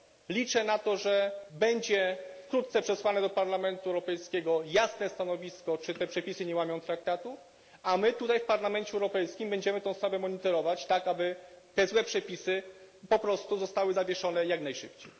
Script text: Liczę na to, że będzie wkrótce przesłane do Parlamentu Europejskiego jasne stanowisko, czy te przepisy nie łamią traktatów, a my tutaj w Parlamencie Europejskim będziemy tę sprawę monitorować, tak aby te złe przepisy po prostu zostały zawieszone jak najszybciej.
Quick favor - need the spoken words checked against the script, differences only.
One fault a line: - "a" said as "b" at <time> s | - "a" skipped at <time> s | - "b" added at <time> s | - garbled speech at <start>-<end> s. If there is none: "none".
none